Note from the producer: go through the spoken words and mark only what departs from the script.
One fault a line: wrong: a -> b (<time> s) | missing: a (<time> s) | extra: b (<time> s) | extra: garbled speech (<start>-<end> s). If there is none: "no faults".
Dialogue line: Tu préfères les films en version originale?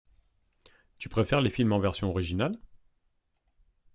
no faults